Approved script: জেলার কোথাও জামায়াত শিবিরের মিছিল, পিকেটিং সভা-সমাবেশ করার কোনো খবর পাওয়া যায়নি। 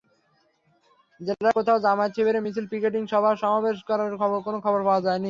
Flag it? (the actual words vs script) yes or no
no